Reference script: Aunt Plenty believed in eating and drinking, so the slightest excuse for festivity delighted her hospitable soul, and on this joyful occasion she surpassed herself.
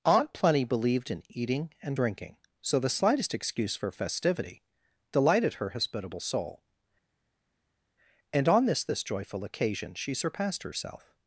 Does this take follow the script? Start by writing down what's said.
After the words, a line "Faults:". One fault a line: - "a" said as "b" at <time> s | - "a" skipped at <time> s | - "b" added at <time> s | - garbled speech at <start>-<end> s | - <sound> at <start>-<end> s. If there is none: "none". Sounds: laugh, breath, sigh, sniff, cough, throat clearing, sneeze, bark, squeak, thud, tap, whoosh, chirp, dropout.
Aunt Plenty believed in eating and drinking, so the slightest excuse for festivity delighted her hospitable soul, and on this this joyful occasion she surpassed herself.
Faults:
- "this" added at 8.8 s